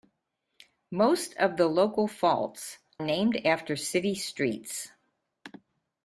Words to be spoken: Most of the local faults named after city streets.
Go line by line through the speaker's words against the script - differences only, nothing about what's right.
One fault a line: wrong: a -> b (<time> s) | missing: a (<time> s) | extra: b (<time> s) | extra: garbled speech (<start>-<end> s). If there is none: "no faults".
no faults